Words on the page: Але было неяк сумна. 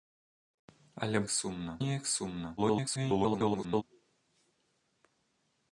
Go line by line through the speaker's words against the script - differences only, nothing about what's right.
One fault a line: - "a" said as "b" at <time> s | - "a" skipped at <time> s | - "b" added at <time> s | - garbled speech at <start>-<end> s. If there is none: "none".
- "было" said as "сумна" at 1.3 s
- garbled speech at 2.6-3.8 s